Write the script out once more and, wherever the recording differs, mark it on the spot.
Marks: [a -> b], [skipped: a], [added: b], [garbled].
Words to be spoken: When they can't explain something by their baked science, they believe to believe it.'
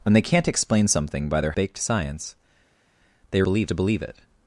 When they can't explain something by their baked science, they believe to believe it.'